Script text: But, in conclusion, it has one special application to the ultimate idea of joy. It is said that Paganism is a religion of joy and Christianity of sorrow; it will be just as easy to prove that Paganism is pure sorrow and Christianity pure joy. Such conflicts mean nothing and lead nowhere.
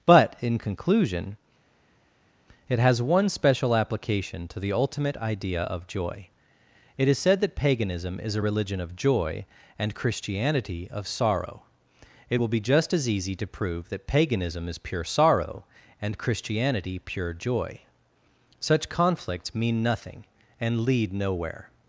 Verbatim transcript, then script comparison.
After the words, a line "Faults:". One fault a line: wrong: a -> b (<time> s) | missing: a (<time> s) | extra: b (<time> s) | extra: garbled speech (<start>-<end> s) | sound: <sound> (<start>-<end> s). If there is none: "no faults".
But, in conclusion, it has one special application to the ultimate idea of joy. It is said that Paganism is a religion of joy and Christianity of sorrow; it will be just as easy to prove that Paganism is pure sorrow and Christianity pure joy. Such conflicts mean nothing and lead nowhere.
Faults:
no faults